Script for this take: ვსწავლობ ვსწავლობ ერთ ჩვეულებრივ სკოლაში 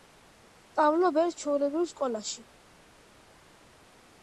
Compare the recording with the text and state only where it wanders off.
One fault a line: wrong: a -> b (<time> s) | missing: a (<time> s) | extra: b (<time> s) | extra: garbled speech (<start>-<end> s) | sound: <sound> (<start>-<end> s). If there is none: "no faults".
missing: ვსწავლობ (1.2 s)